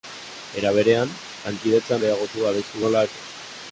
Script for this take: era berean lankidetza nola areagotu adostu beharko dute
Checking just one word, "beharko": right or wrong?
wrong